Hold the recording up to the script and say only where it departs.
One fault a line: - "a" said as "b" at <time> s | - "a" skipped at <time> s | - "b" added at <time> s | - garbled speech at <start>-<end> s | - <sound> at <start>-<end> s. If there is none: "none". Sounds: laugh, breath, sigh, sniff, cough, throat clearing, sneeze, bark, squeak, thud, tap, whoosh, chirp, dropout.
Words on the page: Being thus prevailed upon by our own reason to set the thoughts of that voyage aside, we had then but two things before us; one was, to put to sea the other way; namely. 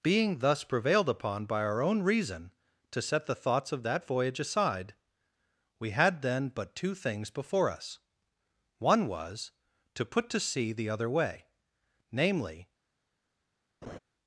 - laugh at 13.8-14.0 s